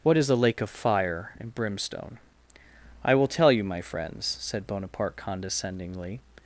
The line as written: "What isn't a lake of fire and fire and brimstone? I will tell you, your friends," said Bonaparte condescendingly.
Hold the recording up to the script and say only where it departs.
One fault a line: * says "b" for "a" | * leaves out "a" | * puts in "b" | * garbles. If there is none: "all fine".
* says "is" for "isn't"
* leaves out "fire and"
* says "my" for "your"